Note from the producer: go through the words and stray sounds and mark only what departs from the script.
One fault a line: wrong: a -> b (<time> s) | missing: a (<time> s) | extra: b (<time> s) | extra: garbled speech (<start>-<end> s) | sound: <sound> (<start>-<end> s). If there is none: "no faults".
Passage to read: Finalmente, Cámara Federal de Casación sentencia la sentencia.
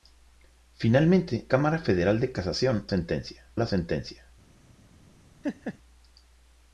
sound: laugh (5.4-5.8 s)